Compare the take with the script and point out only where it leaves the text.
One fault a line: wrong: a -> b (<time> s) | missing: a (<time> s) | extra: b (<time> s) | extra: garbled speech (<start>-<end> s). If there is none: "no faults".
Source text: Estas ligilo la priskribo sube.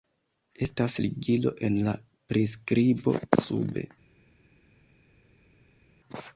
extra: en (1.7 s)